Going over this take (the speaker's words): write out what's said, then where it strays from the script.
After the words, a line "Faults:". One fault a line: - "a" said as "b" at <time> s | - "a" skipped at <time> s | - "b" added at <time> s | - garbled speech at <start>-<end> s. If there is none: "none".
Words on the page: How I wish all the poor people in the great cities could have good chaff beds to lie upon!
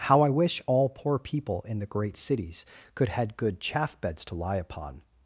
How I wish all poor people in the great cities could had good chaff beds to lie upon!
Faults:
- "the" skipped at 0.9 s
- "have" said as "had" at 3.1 s